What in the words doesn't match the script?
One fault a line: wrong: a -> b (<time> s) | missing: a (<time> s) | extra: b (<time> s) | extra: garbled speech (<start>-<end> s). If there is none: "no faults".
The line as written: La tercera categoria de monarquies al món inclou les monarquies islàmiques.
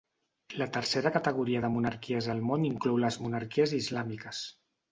no faults